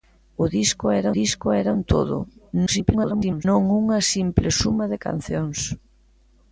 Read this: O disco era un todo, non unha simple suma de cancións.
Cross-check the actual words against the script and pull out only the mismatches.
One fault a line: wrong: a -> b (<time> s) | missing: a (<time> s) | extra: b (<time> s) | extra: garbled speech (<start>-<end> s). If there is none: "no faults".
extra: disco era (1.2 s)
extra: garbled speech (2.7-3.4 s)